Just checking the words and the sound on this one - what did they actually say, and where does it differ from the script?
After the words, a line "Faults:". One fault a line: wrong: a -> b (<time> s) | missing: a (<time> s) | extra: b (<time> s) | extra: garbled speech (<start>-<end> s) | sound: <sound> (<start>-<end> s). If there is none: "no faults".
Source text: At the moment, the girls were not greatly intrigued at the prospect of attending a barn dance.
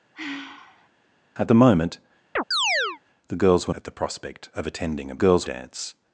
At the moment, the girls were at the prospect of attending a girls dance.
Faults:
sound: sigh (0.1-0.9 s)
sound: chirp (2.4-3.0 s)
missing: not greatly intrigued (3.7 s)
wrong: barn -> girls (5.2 s)